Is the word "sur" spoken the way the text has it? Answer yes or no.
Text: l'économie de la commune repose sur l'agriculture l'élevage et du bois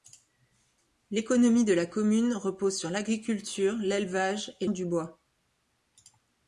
yes